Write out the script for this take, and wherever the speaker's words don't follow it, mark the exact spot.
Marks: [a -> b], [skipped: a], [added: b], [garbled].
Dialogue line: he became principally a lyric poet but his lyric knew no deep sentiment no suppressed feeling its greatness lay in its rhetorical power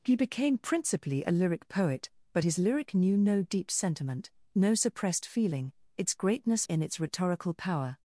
he became principally a lyric poet but his lyric knew no deep sentiment no suppressed feeling its greatness [skipped: lay] in its rhetorical power